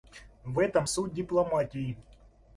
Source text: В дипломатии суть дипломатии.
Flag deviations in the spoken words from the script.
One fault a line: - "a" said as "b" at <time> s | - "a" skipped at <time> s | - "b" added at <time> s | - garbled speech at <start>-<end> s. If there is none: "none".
- "дипломатии" said as "этом" at 0.6 s